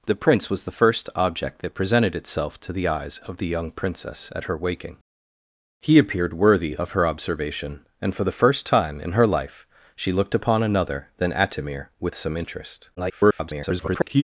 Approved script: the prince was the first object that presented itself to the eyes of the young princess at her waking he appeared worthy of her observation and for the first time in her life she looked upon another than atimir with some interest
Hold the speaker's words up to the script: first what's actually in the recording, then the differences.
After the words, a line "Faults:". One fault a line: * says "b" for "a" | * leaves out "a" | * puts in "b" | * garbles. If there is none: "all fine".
the prince was the first object that presented itself to the eyes of the young princess at her waking he appeared worthy of her observation and for the first time in her life she looked upon another than atimir with some interest [garbled]
Faults:
* garbles